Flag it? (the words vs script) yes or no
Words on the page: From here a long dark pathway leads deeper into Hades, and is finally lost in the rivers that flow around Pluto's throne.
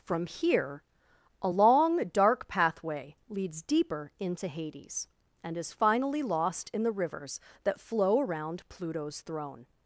no